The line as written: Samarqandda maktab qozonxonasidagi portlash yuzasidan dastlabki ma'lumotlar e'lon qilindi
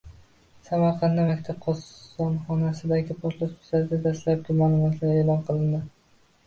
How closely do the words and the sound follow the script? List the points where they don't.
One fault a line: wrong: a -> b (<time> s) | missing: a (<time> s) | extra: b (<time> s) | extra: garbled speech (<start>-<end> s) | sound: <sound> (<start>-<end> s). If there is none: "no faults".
no faults